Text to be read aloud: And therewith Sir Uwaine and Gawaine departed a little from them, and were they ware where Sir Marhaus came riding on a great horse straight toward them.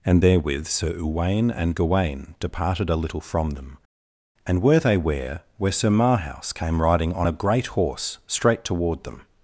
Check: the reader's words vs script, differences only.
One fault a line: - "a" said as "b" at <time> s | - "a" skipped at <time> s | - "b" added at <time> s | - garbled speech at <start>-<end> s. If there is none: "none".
none